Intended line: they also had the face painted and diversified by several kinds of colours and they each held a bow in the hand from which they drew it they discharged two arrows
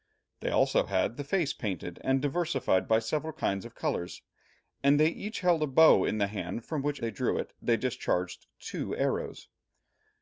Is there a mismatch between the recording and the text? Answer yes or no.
no